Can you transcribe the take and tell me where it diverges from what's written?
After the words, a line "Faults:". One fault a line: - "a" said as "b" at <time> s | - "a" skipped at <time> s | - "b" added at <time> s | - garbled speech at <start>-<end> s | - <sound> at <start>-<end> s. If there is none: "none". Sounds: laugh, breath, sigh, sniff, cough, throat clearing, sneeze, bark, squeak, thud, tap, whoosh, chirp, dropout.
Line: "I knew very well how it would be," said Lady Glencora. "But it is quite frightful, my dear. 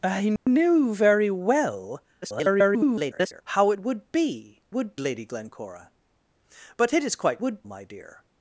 "I knew very well [garbled] how it would be," would Lady Glencora. "But it is quite would, my dear.
Faults:
- dropout at 0.4-0.5 s
- garbled speech at 2.2-3.4 s
- "said" said as "would" at 4.7 s
- "frightful" said as "would" at 7.4 s